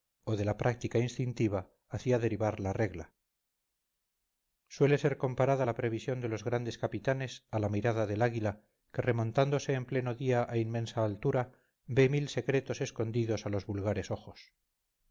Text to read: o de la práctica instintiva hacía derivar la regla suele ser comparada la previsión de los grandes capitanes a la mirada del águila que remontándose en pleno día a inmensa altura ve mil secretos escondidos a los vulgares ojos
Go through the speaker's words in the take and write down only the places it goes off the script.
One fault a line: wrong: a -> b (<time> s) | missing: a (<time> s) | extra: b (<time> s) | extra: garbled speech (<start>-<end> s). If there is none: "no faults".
no faults